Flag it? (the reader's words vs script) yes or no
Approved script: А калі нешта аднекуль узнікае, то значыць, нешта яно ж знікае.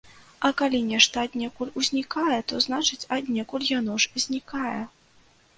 yes